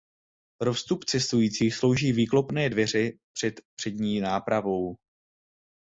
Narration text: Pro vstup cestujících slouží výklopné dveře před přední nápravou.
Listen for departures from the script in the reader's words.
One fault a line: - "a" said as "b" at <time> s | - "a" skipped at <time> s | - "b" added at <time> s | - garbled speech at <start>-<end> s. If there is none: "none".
none